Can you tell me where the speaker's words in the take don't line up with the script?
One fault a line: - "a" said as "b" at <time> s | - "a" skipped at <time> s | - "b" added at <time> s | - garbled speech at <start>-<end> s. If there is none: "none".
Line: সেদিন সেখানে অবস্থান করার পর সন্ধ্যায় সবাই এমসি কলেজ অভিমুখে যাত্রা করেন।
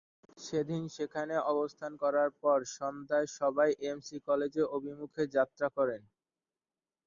none